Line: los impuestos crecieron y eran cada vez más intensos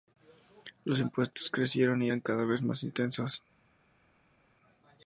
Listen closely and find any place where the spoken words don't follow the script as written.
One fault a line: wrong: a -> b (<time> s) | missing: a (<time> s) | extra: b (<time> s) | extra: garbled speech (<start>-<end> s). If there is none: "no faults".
no faults